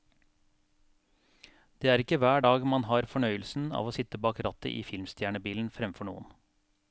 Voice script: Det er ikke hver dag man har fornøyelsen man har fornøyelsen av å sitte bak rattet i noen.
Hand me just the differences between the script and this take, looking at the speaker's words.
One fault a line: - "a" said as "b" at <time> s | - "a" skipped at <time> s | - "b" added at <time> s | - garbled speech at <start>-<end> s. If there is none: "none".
- "man har fornøyelsen" skipped at 3.7 s
- "filmstjernebilen fremfor" added at 4.9 s